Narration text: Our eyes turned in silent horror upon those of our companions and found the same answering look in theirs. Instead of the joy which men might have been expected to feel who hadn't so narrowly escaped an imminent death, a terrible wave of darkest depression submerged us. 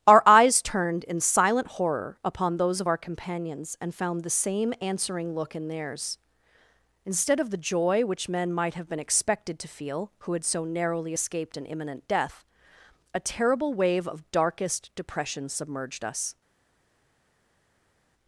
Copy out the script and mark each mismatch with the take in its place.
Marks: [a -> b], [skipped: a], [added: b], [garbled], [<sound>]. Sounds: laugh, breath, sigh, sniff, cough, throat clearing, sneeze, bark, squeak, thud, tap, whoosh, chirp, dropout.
Our eyes turned in silent horror upon those of our companions and found the same answering look in theirs. Instead of the joy which men might have been expected to feel who [hadn't -> had] so narrowly escaped an imminent death, a terrible wave of darkest depression submerged us.